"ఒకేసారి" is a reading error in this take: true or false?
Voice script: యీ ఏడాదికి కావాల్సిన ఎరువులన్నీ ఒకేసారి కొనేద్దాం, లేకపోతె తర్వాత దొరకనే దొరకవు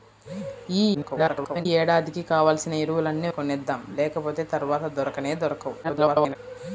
true